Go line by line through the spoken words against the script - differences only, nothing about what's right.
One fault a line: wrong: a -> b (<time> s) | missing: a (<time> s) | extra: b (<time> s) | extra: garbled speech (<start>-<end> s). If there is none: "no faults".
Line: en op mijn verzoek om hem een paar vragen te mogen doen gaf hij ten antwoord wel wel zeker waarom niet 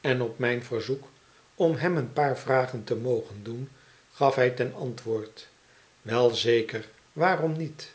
missing: wel (6.3 s)